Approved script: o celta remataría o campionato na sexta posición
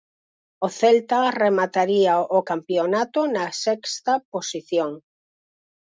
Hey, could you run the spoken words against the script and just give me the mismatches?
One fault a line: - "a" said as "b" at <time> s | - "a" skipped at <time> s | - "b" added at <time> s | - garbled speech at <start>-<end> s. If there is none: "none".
none